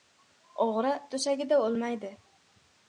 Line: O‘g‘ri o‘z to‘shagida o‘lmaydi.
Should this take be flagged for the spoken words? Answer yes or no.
yes